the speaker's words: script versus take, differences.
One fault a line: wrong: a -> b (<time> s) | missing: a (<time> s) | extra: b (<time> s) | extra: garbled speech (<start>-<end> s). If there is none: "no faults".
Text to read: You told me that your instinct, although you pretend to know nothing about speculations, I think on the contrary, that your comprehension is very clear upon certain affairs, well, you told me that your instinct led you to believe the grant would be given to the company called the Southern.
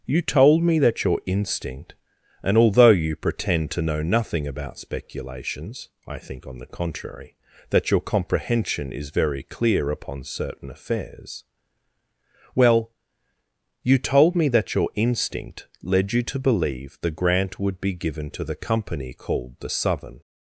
extra: and (2.4 s)